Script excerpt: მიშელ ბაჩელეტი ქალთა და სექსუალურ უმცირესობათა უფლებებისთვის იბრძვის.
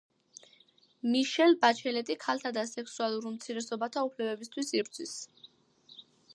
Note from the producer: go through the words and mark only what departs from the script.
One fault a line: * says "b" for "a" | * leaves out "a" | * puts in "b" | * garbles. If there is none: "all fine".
all fine